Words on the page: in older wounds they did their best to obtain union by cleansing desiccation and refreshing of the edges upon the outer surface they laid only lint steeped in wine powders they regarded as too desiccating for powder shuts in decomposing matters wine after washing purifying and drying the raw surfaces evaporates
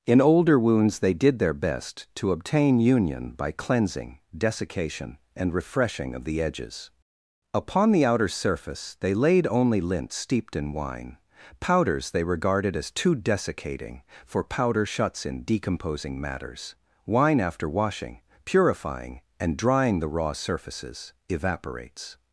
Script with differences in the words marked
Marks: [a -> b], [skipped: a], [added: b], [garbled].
in older wounds they did their best to obtain union by cleansing desiccation and refreshing of the edges upon the outer surface they laid only lint steeped in wine powders they regarded as too desiccating for powder shuts in decomposing matters wine after washing purifying and drying the raw surfaces evaporates